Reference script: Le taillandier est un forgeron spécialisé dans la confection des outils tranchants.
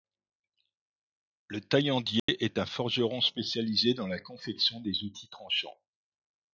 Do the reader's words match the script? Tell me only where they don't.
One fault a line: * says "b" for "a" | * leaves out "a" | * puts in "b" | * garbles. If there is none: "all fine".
all fine